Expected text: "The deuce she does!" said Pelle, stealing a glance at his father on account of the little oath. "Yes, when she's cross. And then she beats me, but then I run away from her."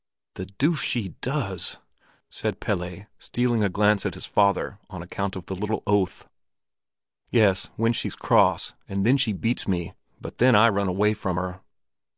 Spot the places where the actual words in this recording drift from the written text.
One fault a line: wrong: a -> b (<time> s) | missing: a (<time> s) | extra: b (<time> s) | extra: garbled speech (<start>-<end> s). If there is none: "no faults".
no faults